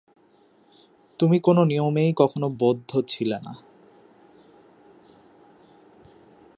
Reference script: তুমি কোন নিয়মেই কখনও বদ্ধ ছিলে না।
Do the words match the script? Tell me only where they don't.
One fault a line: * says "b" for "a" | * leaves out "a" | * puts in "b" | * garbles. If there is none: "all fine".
all fine